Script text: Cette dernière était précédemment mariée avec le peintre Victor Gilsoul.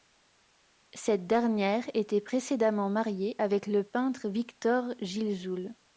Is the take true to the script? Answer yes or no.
yes